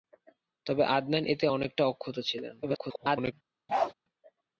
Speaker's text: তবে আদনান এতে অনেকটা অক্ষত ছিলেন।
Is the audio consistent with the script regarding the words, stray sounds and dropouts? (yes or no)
no